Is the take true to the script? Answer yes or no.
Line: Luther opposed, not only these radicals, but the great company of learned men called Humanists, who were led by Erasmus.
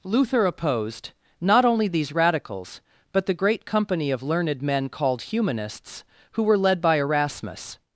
yes